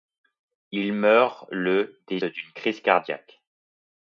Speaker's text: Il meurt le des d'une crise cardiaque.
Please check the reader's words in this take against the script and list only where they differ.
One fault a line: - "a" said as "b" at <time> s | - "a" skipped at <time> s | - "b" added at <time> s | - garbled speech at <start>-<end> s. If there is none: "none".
none